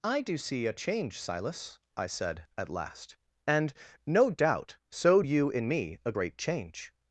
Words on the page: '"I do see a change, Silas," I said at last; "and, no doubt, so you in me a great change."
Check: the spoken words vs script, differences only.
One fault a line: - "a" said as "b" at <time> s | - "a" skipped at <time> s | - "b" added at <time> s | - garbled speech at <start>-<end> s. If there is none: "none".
none